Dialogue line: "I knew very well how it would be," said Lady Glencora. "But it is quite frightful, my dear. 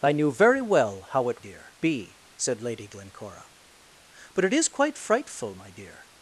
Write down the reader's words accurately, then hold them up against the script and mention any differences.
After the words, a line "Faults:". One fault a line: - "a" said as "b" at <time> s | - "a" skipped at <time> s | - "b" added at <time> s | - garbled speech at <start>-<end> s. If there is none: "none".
"I knew very well how it dear be," said Lady Glencora. "But it is quite frightful, my dear.
Faults:
- "would" said as "dear" at 1.4 s